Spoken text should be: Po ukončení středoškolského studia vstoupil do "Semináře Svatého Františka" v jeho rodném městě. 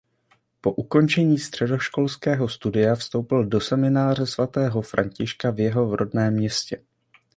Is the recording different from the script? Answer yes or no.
no